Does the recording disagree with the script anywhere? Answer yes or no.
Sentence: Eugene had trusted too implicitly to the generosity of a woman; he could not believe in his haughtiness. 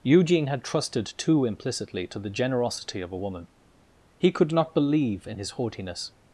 no